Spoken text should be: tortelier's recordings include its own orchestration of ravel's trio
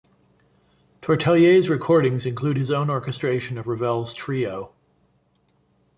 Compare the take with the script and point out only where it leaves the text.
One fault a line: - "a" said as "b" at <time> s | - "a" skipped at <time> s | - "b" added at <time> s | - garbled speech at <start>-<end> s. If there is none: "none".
- "its" said as "his" at 2.6 s